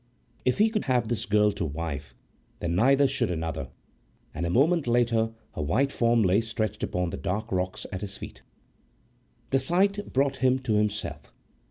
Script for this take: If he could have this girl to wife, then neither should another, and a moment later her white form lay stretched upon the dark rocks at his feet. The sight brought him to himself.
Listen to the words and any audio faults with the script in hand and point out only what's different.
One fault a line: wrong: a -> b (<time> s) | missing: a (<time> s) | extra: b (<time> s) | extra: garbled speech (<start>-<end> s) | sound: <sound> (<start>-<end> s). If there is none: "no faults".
no faults